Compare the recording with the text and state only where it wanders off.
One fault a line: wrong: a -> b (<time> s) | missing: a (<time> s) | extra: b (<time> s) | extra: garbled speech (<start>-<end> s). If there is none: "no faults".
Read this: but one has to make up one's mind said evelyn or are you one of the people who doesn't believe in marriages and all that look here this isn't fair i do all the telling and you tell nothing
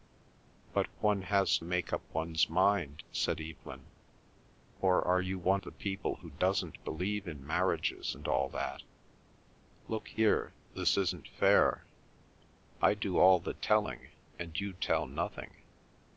missing: to (1.6 s)
missing: of (5.6 s)